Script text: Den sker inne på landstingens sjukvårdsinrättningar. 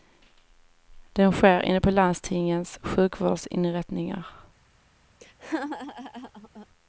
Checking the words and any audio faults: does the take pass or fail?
fail